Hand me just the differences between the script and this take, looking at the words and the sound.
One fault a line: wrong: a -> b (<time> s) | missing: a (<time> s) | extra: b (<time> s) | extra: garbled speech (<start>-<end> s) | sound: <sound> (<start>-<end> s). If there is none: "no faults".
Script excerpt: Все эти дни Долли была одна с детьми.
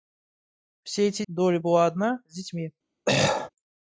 missing: дни (1.2 s)
sound: throat clearing (3.1-3.5 s)